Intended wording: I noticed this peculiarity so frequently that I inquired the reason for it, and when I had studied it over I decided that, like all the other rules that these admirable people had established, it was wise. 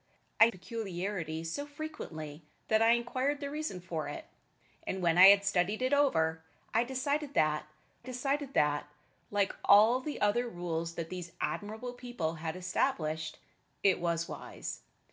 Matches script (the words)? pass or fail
fail